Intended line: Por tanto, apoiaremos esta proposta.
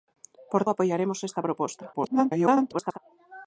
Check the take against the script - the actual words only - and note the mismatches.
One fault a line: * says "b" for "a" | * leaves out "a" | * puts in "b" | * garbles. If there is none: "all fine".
* leaves out "tanto"
* garbles